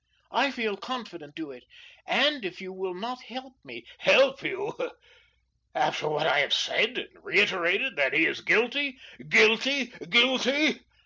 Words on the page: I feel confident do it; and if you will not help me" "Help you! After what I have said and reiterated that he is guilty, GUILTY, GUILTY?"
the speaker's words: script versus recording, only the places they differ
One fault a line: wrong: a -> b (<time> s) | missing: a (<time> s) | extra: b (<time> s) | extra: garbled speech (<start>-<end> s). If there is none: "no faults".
no faults